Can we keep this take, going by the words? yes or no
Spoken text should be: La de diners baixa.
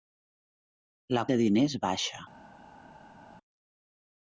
yes